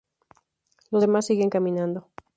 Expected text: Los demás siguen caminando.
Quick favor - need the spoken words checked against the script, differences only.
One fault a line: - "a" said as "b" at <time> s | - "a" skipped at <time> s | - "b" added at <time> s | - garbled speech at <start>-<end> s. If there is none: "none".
none